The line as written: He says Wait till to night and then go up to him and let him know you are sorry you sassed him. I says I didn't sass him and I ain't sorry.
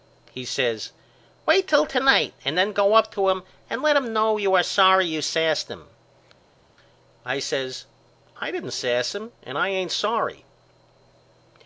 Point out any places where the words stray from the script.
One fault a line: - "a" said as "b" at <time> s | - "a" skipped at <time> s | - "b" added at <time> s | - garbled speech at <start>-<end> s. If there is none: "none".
none